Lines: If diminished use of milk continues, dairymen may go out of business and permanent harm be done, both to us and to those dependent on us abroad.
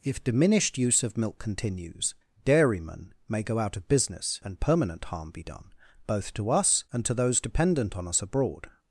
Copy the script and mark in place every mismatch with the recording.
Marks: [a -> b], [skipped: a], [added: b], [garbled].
If diminished use of milk continues, dairymen may go out of business and permanent harm be done, both to us and to those dependent on us abroad.